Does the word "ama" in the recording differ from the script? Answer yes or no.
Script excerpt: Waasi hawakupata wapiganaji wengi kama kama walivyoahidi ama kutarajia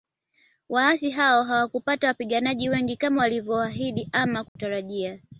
no